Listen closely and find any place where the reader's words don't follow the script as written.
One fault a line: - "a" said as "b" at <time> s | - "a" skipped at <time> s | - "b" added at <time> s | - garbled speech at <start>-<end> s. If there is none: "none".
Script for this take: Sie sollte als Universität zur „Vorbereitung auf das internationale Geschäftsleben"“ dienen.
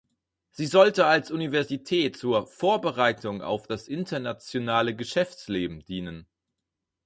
none